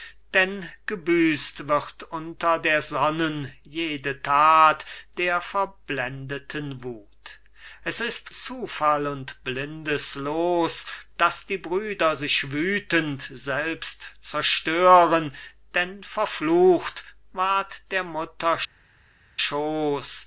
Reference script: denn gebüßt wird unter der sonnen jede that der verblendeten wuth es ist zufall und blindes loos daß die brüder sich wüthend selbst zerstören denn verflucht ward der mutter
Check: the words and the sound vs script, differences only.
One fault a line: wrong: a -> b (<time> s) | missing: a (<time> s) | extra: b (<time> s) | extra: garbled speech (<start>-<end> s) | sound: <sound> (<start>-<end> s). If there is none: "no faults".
no faults